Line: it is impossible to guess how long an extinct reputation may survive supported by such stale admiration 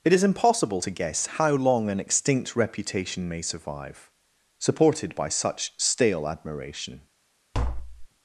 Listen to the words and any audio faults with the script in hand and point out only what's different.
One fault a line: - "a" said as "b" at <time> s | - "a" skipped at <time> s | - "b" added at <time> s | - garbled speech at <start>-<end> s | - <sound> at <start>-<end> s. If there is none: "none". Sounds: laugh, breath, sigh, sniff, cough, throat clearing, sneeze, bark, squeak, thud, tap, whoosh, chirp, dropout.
- tap at 7.5-8.1 s